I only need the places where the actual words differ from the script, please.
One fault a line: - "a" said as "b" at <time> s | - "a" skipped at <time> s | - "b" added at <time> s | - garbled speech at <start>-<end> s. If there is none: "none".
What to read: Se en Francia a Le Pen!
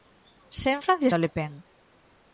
none